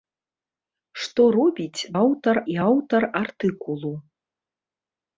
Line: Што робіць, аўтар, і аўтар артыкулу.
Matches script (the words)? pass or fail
pass